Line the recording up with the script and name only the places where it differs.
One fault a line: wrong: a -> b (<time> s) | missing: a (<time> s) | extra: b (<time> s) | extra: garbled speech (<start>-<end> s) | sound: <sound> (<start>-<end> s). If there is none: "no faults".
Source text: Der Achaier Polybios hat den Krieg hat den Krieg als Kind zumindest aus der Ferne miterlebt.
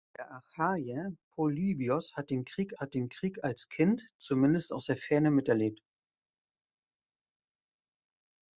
no faults